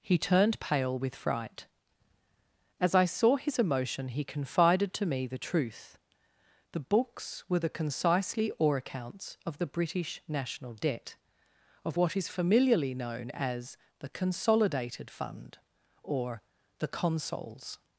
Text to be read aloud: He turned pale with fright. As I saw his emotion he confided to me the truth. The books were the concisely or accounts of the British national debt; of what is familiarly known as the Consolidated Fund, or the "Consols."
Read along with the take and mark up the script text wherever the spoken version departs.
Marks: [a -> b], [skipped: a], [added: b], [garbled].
He turned pale with fright. As I saw his emotion he confided to me the truth. The books were the concisely or accounts of the British national debt; of what is familiarly known as the Consolidated Fund, or the "Consols."